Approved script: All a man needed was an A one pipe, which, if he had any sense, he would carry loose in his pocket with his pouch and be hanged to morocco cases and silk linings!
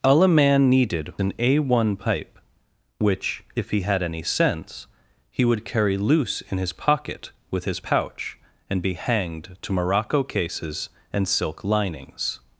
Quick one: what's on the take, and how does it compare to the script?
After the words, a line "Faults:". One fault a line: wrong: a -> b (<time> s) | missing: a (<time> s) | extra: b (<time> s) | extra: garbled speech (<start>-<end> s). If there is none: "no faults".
All a man needed an A one pipe, which, if he had any sense, he would carry loose in his pocket with his pouch and be hanged to morocco cases and silk linings!
Faults:
missing: was (1.1 s)